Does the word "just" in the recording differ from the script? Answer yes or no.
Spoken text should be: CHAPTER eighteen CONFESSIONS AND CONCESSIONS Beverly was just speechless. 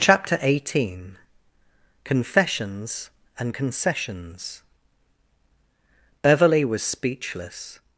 yes